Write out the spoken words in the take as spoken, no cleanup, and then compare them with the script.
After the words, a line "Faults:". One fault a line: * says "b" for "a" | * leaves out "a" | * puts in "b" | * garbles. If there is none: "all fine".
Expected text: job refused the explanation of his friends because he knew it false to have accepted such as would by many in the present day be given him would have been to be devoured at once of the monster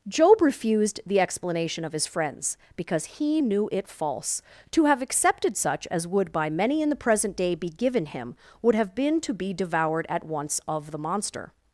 job refused the explanation of his friends because he knew it false to have accepted such as would by many in the present day be given him would have been to be devoured at once of the monster
Faults:
all fine